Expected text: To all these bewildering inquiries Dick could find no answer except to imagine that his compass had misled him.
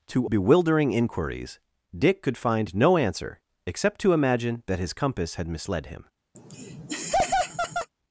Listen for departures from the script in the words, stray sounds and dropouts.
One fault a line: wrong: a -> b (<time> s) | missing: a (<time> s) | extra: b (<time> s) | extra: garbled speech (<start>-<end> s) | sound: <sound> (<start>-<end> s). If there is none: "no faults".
missing: all these (0.3 s)
sound: laugh (6.3-7.9 s)